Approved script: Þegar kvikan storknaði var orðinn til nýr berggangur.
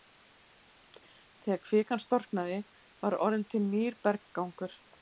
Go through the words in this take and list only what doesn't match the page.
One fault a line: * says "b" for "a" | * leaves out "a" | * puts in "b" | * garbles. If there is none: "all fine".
all fine